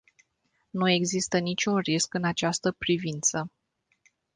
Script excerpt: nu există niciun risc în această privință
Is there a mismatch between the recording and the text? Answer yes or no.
no